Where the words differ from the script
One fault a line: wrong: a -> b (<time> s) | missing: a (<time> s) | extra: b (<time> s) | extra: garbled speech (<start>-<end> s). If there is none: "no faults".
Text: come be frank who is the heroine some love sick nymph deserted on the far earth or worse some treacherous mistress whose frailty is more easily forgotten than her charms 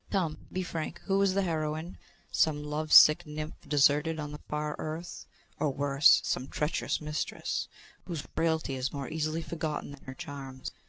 no faults